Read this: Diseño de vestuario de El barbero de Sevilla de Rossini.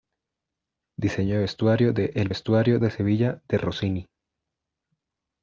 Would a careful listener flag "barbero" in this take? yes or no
yes